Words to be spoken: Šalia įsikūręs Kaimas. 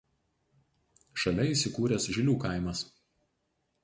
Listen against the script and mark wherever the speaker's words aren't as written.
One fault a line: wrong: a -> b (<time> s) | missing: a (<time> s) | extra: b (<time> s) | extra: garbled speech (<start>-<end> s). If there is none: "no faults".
extra: Žilių (2.2 s)